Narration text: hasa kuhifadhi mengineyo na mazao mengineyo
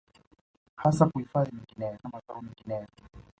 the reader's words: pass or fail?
pass